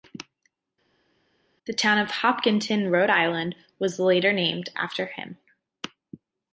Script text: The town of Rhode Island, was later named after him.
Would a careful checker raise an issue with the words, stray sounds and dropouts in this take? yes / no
yes